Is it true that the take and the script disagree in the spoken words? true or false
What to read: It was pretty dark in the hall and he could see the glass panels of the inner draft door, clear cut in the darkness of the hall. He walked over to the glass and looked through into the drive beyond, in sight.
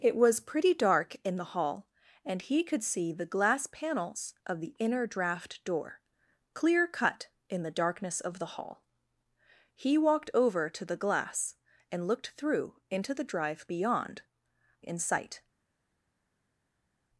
false